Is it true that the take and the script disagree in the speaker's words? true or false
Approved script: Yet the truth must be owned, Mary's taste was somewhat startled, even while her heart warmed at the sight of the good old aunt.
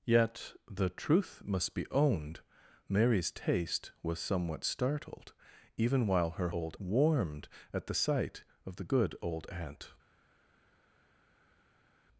true